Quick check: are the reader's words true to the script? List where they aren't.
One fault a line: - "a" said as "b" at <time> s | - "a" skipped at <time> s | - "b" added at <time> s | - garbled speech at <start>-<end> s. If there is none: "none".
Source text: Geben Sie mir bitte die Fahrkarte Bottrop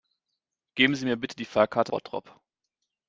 none